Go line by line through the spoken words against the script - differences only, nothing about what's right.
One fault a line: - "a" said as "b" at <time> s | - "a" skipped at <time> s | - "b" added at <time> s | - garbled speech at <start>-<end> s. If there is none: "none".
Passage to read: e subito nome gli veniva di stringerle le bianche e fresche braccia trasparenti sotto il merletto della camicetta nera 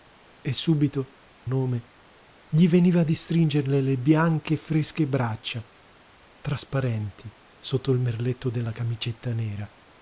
none